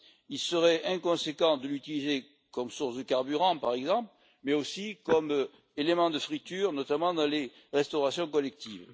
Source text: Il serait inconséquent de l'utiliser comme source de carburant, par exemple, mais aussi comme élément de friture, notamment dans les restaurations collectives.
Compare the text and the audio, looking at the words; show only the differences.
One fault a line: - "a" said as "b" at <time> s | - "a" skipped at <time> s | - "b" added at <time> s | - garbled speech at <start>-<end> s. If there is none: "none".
none